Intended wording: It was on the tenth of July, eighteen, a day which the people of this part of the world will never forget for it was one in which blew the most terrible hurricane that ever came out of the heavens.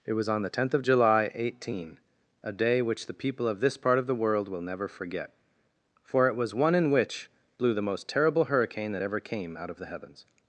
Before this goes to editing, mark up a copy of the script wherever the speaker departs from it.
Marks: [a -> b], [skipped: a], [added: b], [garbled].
It was on the tenth of July, eighteen, a day which the people of this part of the world will never forget for it was one in which blew the most terrible hurricane that ever came out of the heavens.